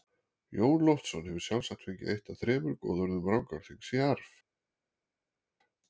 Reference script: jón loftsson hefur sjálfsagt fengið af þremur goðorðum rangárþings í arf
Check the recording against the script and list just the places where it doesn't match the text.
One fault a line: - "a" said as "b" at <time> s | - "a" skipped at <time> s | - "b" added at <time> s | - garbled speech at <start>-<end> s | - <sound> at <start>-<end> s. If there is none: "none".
- "eitt" added at 2.1 s